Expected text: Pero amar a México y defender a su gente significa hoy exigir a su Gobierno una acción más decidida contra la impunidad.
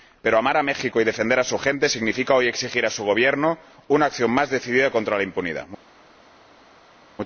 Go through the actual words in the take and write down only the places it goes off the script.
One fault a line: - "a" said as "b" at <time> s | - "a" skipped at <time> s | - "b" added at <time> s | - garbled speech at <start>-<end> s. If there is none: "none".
none